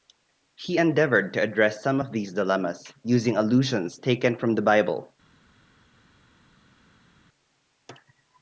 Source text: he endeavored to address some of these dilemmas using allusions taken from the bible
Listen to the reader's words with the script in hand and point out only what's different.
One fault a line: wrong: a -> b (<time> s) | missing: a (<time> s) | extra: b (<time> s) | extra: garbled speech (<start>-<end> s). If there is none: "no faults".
no faults